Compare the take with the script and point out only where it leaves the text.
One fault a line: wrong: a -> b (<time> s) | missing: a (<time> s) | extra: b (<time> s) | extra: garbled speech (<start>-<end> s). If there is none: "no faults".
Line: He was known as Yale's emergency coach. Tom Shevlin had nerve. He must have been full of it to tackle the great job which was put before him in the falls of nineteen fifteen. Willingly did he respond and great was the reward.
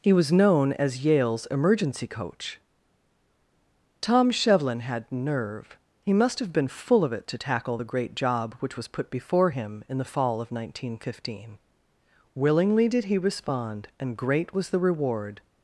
wrong: falls -> fall (10.1 s)